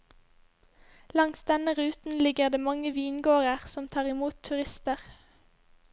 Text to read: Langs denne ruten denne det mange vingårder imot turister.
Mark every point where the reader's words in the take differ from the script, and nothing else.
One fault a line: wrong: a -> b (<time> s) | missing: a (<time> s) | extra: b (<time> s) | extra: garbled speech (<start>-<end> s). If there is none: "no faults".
wrong: denne -> ligger (2.2 s)
extra: som tar (3.7 s)